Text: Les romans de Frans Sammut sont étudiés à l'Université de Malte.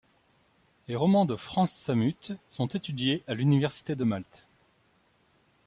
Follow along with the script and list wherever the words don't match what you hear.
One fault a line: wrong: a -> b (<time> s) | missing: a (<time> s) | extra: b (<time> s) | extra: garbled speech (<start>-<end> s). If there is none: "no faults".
no faults